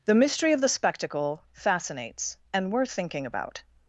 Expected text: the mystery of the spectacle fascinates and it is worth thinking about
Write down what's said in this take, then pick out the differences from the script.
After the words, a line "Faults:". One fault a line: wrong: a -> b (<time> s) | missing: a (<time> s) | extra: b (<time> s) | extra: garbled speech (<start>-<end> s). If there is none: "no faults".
the mystery of the spectacle fascinates and worth thinking about
Faults:
missing: it is (2.7 s)